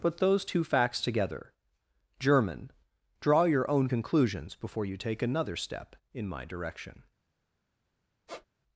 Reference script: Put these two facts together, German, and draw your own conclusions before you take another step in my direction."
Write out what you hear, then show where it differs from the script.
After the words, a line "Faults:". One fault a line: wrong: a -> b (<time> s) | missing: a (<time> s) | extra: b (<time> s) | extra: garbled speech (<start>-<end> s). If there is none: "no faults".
Put those two facts together, German, draw your own conclusions before you take another step in my direction."
Faults:
wrong: these -> those (0.2 s)
missing: and (2.7 s)